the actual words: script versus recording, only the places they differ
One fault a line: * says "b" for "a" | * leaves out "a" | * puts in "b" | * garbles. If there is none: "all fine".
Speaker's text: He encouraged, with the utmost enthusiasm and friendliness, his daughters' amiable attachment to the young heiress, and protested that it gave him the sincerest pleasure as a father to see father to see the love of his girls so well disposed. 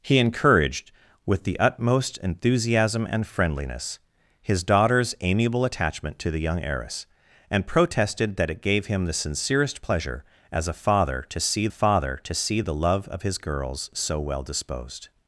all fine